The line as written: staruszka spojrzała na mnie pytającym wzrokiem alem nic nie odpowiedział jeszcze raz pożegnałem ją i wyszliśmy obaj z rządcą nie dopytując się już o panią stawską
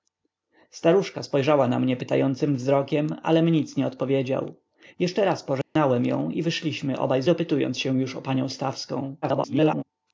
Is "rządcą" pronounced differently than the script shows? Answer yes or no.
yes